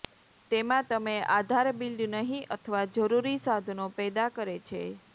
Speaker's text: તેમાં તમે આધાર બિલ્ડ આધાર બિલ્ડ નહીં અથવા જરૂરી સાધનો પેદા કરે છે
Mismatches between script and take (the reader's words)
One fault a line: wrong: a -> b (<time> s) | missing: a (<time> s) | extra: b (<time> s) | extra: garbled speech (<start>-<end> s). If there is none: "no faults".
missing: આધાર બિલ્ડ (2.0 s)